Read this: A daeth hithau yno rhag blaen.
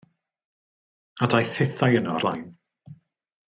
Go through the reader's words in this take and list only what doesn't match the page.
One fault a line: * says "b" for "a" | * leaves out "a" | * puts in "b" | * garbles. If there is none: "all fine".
* leaves out "rhag"